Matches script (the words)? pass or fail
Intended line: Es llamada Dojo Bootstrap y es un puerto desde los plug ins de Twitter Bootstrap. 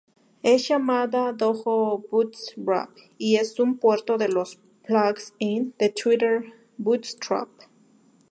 fail